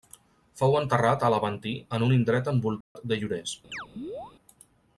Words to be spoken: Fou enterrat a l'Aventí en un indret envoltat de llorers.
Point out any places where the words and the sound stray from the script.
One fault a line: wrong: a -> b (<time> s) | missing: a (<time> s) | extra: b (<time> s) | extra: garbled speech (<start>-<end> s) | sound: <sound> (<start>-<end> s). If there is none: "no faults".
sound: dropout (2.8-3.0 s)
sound: chirp (3.7-4.3 s)